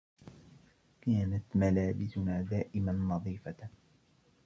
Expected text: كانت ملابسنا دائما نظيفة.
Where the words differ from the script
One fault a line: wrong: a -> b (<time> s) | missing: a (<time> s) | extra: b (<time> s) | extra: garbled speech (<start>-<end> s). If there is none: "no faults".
no faults